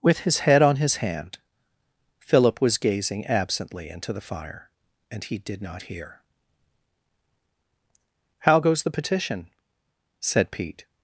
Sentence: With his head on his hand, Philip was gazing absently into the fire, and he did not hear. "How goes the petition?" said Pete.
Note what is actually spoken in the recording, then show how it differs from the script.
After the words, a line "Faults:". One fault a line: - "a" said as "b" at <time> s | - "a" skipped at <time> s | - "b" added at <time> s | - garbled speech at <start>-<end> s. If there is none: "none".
With his head on his hand, Philip was gazing absently into the fire, and he did not hear. "How goes the petition?" said Pete.
Faults:
none